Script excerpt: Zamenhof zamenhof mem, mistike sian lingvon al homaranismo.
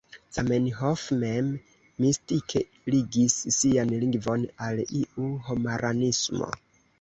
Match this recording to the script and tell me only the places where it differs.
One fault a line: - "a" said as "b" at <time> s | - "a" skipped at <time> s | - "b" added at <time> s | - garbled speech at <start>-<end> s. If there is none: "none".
- "zamenhof" skipped at 1.0 s
- "ligis" added at 2.9 s
- "iu" added at 5.0 s